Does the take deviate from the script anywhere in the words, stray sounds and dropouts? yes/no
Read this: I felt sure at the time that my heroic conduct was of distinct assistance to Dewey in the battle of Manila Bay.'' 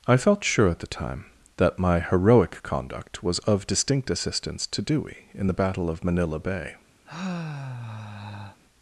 yes